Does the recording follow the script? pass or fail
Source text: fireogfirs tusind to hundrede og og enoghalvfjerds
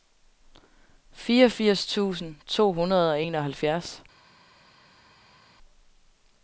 fail